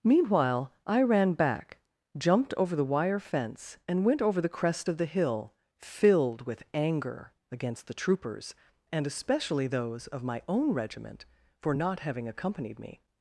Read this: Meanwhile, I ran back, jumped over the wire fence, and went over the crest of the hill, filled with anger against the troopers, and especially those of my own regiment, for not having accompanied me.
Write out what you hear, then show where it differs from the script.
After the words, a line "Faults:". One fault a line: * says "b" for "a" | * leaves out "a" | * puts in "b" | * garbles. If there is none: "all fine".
Meanwhile, I ran back, jumped over the wire fence, and went over the crest of the hill, filled with anger against the troopers, and especially those of my own regiment, for not having accompanied me.
Faults:
all fine